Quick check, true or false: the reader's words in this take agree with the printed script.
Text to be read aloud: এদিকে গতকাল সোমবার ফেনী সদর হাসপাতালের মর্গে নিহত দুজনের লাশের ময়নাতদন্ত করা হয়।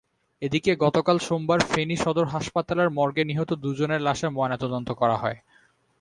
true